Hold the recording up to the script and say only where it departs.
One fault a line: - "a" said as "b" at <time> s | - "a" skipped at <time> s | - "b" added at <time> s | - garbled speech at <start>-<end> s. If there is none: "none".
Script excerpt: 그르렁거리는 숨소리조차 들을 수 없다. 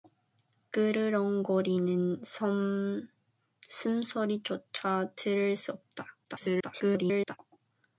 - garbled speech at 6.2-7.4 s